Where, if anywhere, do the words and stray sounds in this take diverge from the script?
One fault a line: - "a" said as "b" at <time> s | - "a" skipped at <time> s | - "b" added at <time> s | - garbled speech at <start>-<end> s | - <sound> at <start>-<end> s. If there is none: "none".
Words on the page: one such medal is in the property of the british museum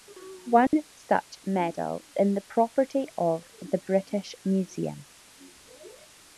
- dropout at 0.7-0.7 s
- "is" skipped at 2.0 s